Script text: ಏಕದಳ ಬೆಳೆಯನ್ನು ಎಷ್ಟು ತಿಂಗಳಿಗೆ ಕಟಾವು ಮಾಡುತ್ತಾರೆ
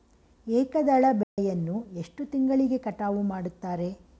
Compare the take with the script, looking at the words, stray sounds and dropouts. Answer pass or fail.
fail